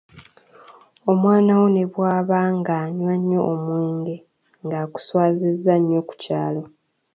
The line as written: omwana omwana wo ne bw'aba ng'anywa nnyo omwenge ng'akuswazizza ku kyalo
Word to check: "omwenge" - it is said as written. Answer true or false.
true